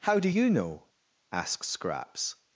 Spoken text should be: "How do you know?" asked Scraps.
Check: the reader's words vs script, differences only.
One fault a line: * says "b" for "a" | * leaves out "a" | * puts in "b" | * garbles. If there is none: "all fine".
* says "asks" for "asked"